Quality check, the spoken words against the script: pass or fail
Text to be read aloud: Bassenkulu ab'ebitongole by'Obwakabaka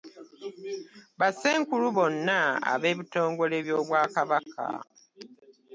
fail